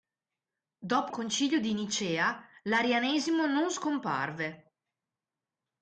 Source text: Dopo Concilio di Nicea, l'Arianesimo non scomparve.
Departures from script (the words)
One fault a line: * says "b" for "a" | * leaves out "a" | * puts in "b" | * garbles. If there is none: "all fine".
all fine